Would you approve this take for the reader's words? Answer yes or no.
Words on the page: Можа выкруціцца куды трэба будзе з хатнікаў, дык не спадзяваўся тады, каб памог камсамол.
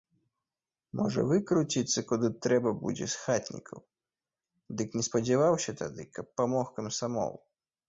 yes